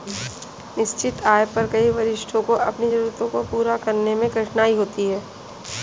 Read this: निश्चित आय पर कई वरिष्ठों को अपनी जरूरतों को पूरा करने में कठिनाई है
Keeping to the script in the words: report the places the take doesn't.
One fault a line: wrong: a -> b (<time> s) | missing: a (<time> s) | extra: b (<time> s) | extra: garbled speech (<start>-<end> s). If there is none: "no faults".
extra: होती (4.8 s)